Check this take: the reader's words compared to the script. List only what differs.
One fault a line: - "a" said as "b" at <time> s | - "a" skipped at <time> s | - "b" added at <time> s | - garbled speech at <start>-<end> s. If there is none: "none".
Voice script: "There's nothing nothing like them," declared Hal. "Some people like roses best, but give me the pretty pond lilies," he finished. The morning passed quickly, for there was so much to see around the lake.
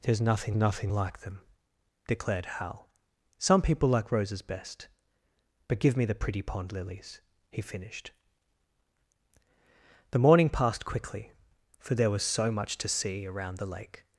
none